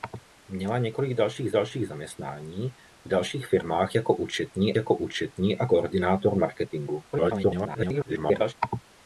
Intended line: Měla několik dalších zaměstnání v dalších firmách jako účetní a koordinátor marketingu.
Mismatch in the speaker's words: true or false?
true